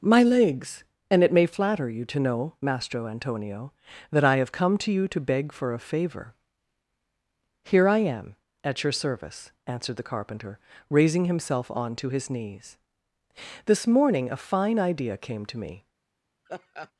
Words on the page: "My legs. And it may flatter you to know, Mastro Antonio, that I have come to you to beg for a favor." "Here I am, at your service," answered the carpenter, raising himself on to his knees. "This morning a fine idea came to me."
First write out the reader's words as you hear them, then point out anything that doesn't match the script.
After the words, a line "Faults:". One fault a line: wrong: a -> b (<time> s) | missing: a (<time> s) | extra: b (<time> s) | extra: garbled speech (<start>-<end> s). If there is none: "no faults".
"My legs. And it may flatter you to know, Mastro Antonio, that I have come to you to beg for a favor." "Here I am, at your service," answered the carpenter, raising himself on to his knees. "This morning a fine idea came to me."
Faults:
no faults